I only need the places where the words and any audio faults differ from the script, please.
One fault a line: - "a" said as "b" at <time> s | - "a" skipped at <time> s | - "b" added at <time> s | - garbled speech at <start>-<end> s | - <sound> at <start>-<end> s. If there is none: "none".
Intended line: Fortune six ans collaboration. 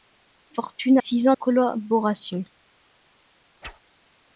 - whoosh at 3.6-3.8 s